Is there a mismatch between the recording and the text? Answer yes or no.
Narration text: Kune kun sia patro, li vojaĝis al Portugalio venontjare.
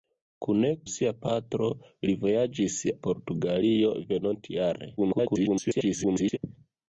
yes